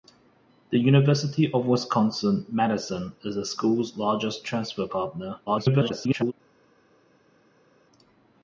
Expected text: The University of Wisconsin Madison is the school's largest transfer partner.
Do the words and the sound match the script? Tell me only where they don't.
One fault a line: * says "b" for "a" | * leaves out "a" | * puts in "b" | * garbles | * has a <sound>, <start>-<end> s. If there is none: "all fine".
* garbles